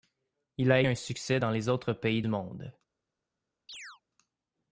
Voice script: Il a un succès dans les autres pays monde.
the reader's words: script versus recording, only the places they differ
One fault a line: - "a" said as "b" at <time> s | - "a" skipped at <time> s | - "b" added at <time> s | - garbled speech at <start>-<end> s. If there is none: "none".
none